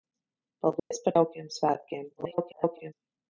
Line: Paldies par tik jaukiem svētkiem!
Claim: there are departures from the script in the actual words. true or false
true